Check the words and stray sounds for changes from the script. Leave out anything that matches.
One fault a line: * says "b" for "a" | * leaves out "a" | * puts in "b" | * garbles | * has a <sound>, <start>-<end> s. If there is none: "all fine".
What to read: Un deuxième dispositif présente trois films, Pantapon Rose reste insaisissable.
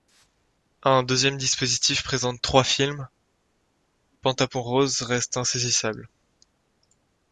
all fine